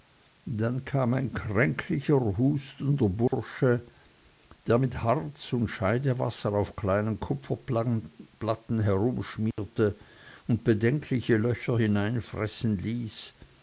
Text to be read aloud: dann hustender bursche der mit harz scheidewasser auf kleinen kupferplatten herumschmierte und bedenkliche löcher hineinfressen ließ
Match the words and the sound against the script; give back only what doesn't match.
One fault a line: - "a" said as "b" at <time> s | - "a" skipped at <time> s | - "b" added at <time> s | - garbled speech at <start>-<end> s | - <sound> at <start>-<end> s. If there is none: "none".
- "kam ein kränklicher" added at 0.8 s
- dropout at 3.3-3.3 s
- "und" added at 5.5 s
- dropout at 9.5-9.6 s